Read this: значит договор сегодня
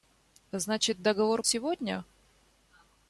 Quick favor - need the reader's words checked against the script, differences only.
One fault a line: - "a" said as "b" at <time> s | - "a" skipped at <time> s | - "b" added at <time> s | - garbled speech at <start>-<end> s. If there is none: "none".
none